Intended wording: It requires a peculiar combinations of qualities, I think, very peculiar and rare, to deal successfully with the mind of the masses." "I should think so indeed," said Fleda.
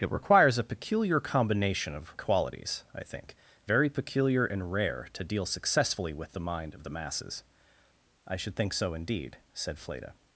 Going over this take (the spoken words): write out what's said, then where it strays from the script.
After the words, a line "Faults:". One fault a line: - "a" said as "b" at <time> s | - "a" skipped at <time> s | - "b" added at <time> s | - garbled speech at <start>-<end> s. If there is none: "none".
It requires a peculiar combination of qualities, I think, very peculiar and rare, to deal successfully with the mind of the masses." "I should think so indeed," said Fleda.
Faults:
- "combinations" said as "combination" at 1.2 s